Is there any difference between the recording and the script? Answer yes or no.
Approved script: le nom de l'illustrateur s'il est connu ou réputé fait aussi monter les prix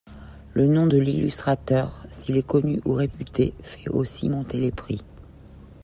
no